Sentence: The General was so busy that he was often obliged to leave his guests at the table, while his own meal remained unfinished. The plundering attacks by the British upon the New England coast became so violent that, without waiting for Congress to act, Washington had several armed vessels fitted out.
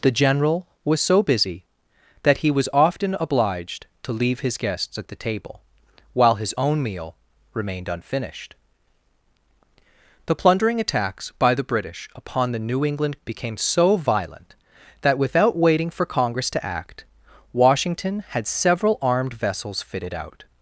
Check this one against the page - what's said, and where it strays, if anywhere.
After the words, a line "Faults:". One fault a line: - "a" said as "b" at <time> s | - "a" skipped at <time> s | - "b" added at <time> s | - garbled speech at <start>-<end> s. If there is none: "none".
The General was so busy that he was often obliged to leave his guests at the table, while his own meal remained unfinished. The plundering attacks by the British upon the New England became so violent that, without waiting for Congress to act, Washington had several armed vessels fitted out.
Faults:
- "coast" skipped at 13.2 s